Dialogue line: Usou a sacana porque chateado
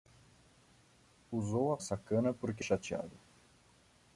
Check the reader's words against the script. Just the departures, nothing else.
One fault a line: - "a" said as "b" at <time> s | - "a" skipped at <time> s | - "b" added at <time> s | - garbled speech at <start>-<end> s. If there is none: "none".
none